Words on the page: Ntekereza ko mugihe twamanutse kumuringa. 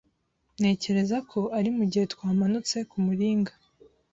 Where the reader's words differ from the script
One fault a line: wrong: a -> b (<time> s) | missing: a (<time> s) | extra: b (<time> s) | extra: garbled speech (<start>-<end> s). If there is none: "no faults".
extra: ari (1.6 s)